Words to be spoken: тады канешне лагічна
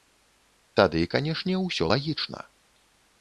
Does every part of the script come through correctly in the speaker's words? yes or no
no